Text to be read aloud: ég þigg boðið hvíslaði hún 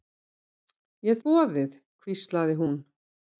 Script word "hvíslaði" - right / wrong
right